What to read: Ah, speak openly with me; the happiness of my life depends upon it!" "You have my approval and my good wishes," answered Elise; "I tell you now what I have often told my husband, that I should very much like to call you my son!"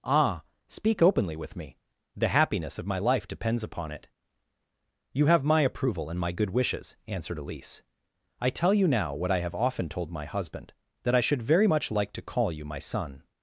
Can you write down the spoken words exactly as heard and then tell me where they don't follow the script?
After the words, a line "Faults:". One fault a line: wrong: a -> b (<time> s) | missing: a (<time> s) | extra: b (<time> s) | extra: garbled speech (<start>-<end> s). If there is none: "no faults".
Ah, speak openly with me; the happiness of my life depends upon it!" "You have my approval and my good wishes," answered Elise; "I tell you now what I have often told my husband, that I should very much like to call you my son!"
Faults:
no faults